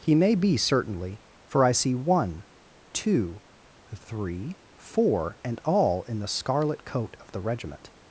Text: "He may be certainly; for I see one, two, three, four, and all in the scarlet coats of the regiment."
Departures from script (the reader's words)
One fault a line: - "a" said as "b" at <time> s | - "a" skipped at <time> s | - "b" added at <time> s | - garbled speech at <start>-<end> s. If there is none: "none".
- "coats" said as "coat" at 6.8 s